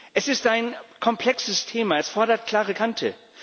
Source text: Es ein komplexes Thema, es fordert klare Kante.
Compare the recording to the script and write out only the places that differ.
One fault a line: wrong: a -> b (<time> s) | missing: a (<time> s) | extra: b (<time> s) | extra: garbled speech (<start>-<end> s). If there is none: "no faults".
extra: ist (0.3 s)